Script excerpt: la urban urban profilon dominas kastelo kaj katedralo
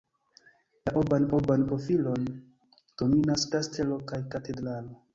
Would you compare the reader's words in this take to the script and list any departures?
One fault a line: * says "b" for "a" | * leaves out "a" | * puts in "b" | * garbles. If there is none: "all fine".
all fine